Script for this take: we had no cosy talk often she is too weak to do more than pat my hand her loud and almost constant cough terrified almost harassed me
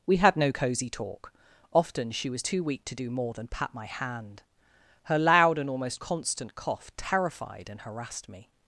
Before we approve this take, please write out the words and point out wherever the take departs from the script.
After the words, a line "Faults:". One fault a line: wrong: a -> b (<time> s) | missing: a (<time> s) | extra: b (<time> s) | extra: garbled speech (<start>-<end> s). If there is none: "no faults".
we had no cosy talk often she was too weak to do more than pat my hand her loud and almost constant cough terrified and harassed me
Faults:
wrong: is -> was (2.3 s)
wrong: almost -> and (7.7 s)